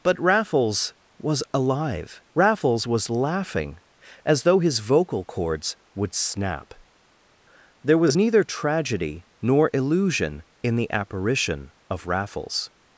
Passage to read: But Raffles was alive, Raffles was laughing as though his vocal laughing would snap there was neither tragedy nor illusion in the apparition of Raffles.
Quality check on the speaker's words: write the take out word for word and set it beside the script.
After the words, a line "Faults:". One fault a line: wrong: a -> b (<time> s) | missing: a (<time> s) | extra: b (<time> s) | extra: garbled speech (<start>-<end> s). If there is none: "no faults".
But Raffles was alive, Raffles was laughing as though his vocal cords would snap there was neither tragedy nor illusion in the apparition of Raffles.
Faults:
wrong: laughing -> cords (5.2 s)